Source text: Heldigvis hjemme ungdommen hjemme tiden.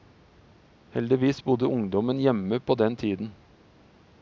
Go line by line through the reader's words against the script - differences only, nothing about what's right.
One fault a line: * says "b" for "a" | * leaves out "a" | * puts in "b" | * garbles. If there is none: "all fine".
* says "bodde" for "hjemme"
* puts in "på den"